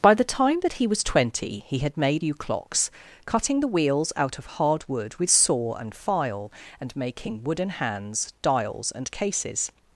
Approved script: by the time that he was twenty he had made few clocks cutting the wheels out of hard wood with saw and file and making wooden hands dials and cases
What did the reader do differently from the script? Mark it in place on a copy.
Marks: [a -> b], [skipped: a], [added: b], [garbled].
by the time that he was twenty he had made few clocks cutting the wheels out of hard wood with saw and file and making wooden hands dials and cases